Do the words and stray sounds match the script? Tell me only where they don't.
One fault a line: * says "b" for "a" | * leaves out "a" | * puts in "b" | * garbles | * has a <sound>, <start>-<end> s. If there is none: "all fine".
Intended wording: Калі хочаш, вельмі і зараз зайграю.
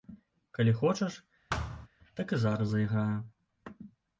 * has a thud, 1.5-1.9 s
* says "так" for "вельмі"